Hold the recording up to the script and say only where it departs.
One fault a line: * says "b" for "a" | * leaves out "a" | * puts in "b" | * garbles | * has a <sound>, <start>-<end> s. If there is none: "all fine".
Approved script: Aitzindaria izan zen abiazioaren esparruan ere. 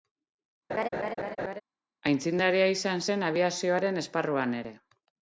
* has a laugh, 0.7-1.6 s